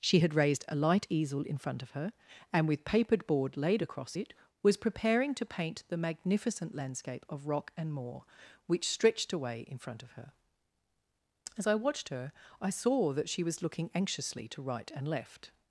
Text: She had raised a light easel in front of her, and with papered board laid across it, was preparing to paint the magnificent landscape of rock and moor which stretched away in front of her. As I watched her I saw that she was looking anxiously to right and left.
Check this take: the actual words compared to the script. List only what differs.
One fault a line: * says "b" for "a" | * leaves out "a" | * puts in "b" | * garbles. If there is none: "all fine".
all fine